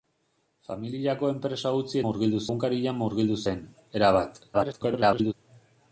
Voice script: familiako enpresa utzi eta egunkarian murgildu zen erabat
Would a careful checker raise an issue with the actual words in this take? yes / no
yes